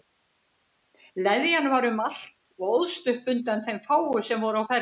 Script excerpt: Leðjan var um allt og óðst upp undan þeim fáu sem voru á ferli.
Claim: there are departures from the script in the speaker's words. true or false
false